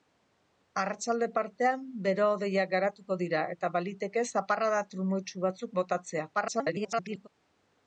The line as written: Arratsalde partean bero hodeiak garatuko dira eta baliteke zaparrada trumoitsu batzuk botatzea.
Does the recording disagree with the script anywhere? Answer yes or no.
yes